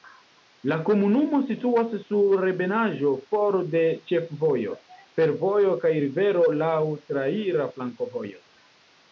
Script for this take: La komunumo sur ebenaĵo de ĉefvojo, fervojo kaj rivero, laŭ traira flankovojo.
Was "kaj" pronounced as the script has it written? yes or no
yes